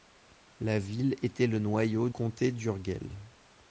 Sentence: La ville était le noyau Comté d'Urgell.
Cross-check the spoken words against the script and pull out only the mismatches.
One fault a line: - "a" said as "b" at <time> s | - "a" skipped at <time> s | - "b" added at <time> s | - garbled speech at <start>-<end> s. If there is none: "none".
none